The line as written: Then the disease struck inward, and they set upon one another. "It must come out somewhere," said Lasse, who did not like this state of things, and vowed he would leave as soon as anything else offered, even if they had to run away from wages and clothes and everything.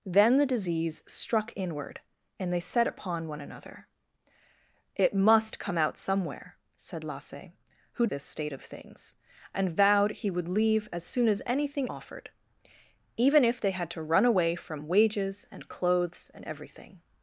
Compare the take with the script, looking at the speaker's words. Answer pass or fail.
fail